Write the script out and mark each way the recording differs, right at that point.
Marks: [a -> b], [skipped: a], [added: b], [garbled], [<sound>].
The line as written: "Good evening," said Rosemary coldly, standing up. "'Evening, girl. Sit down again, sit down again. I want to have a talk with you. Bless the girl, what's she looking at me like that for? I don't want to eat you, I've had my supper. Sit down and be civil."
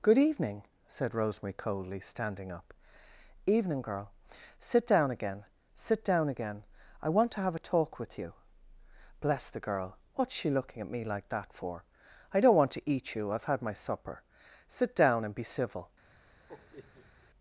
"Good evening," said Rosemary coldly, standing up. "'Evening, girl. Sit down again, sit down again. I want to have a talk with you. Bless the girl, what's she looking at me like that for? I don't want to eat you, I've had my supper. Sit down and be civil." [laugh]